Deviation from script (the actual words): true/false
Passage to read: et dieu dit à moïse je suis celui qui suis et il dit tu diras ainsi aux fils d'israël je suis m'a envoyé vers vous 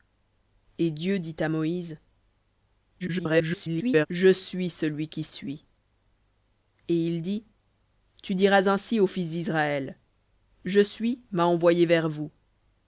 true